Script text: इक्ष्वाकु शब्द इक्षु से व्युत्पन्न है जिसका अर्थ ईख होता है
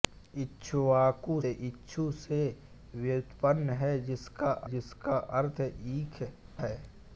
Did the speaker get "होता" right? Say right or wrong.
wrong